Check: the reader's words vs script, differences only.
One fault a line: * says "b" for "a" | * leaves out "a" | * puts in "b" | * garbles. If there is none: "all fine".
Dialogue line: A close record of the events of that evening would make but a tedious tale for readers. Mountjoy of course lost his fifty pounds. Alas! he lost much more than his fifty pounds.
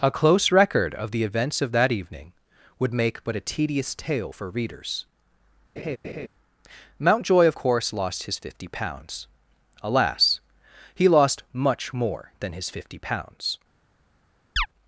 all fine